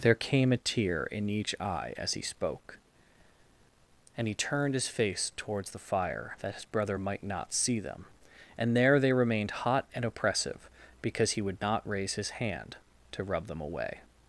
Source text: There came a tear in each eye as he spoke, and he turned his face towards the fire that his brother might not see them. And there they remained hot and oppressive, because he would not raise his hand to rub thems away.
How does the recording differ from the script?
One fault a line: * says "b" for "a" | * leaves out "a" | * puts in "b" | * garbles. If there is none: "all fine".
* says "them" for "thems"